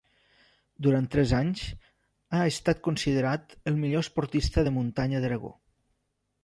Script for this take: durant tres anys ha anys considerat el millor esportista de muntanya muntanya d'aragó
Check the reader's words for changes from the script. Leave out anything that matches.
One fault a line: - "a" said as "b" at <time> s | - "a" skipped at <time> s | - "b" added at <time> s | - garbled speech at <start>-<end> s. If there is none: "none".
- "anys" said as "estat" at 2.5 s
- "muntanya" skipped at 5.3 s